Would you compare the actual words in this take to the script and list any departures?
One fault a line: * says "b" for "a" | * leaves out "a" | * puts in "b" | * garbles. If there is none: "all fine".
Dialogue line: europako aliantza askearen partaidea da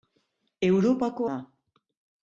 * leaves out "aliantza askearen partaidea"